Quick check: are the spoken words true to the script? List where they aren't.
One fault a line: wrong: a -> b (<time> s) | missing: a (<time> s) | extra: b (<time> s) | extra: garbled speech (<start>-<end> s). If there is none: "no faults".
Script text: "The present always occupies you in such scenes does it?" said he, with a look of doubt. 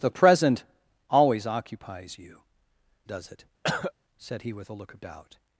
missing: in such scenes (2.4 s)